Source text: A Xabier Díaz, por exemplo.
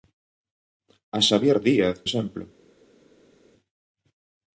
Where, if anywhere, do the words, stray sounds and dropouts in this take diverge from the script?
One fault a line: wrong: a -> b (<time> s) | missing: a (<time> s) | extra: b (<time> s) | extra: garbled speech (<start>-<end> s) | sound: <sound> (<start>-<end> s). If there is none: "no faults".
missing: por (2.0 s)